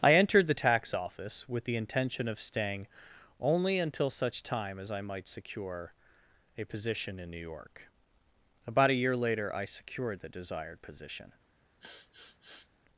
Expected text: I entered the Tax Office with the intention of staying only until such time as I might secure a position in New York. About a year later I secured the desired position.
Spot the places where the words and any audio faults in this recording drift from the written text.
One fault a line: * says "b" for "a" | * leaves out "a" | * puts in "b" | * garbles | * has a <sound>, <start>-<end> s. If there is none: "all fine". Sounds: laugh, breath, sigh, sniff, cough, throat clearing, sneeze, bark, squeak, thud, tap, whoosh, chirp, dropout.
* has a sniff, 11.8-12.7 s